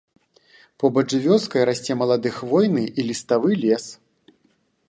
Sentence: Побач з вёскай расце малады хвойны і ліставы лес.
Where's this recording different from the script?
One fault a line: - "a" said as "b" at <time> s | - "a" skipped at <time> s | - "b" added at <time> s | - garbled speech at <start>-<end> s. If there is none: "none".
none